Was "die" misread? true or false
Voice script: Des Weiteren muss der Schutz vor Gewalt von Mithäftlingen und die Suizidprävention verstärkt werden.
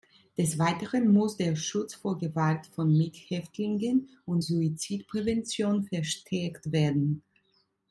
true